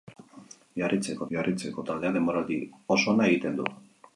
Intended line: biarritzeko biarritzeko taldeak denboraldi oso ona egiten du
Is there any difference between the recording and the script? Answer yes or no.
no